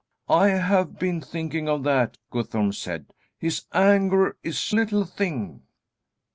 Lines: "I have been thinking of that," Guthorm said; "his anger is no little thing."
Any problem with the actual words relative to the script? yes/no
yes